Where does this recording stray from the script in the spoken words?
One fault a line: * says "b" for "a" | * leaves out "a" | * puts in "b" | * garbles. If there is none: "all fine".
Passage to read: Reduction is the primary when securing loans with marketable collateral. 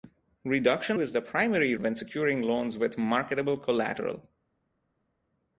all fine